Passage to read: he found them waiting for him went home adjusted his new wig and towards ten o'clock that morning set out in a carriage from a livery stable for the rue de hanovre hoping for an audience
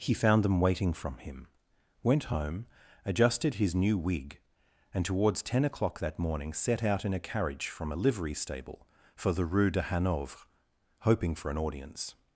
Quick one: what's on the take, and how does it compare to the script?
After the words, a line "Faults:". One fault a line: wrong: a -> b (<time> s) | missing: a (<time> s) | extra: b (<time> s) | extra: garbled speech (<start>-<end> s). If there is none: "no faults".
he found them waiting from him went home adjusted his new wig and towards ten o'clock that morning set out in a carriage from a livery stable for the rue de hanovre hoping for an audience
Faults:
wrong: for -> from (0.9 s)